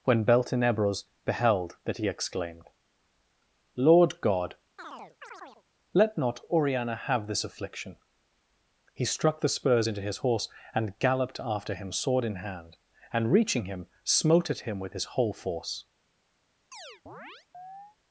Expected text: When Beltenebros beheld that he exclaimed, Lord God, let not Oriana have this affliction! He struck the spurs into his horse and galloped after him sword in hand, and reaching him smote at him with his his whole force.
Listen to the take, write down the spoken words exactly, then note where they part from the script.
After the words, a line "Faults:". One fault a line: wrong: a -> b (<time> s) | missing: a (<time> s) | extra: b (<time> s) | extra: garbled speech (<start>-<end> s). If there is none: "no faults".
When Beltenebros beheld that he exclaimed, Lord God, let not Oriana have this affliction! He struck the spurs into his horse and galloped after him sword in hand, and reaching him smote at him with his whole force.
Faults:
missing: his (15.0 s)